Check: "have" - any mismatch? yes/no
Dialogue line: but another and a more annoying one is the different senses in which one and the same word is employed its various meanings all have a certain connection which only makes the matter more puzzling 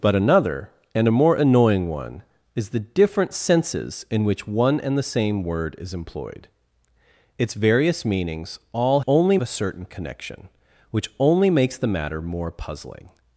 yes